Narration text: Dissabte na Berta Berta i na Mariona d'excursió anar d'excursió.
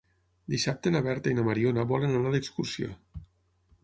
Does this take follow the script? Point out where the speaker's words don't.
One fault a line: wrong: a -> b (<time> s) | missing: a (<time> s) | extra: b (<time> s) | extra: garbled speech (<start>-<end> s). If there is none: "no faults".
missing: Berta (1.3 s)
wrong: d'excursió -> volen (1.9 s)